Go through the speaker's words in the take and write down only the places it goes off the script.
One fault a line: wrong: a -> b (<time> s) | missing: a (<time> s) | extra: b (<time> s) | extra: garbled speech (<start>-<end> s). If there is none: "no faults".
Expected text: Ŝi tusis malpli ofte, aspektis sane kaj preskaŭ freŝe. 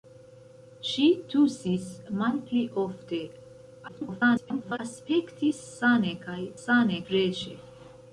extra: garbled speech (3.9-4.8 s)
wrong: preskaŭ -> sane (6.6 s)